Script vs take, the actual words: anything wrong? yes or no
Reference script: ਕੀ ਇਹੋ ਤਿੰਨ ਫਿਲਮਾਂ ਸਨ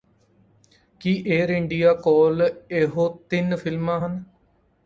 yes